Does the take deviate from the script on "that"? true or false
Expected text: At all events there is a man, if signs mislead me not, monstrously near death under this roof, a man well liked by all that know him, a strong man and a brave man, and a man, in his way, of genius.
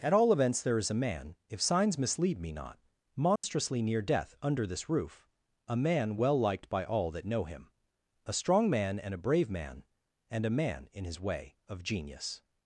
false